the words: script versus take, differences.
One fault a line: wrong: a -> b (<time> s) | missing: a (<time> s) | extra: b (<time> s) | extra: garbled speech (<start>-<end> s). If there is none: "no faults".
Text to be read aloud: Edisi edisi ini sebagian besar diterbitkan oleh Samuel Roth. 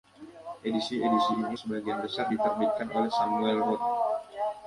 no faults